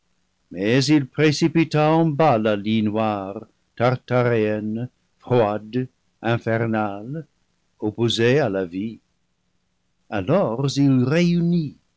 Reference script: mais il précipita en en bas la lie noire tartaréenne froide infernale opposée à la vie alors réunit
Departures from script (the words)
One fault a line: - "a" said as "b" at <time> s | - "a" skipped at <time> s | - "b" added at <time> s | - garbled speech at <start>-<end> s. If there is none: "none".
- "en" skipped at 2.0 s
- "il" added at 10.8 s